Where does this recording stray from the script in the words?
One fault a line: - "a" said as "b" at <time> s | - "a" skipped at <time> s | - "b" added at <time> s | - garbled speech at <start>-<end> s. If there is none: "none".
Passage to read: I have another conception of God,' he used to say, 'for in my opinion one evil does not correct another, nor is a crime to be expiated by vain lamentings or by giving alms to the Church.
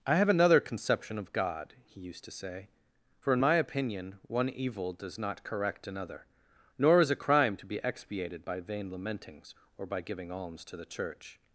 none